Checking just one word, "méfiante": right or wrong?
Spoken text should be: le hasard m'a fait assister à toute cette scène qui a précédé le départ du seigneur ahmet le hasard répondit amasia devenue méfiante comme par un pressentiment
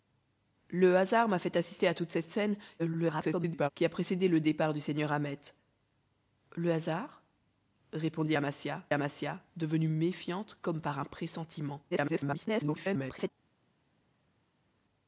right